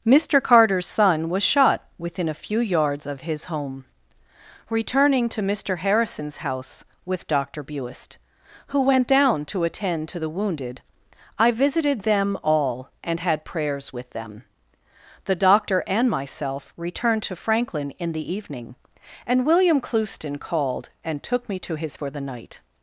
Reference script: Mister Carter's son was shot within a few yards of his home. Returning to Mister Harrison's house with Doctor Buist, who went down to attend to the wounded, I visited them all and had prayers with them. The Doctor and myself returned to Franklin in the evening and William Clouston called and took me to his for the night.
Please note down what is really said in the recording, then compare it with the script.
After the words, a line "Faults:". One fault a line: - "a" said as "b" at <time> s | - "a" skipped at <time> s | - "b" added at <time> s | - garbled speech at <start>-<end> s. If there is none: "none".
Mister Carter's son was shot within a few yards of his home. Returning to Mister Harrison's house with Doctor Buist, who went down to attend to the wounded, I visited them all and had prayers with them. The Doctor and myself returned to Franklin in the evening and William Clouston called and took me to his for the night.
Faults:
none